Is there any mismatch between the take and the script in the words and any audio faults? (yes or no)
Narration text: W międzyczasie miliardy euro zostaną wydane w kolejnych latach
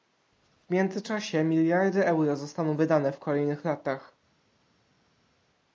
no